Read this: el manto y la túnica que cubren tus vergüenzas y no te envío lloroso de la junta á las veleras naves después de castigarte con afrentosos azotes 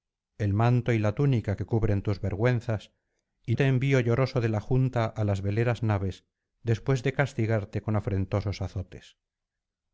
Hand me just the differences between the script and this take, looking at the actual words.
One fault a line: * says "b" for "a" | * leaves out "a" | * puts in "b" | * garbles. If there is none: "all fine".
* leaves out "no"